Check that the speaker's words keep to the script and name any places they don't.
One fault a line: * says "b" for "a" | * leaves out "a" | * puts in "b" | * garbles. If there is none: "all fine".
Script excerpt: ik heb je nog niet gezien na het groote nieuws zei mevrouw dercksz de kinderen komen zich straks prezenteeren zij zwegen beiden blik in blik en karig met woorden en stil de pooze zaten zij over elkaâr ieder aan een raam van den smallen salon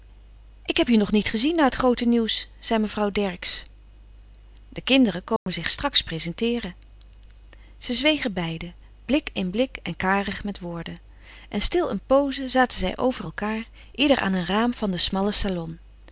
* says "een" for "de"